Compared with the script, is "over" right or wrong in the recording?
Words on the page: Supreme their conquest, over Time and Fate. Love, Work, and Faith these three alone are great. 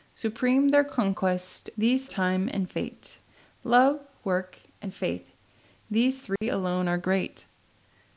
wrong